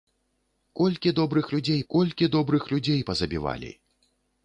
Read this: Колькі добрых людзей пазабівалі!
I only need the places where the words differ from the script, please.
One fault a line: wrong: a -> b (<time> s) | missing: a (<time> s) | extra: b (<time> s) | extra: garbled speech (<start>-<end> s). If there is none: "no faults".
extra: колькі добрых людзей (1.9 s)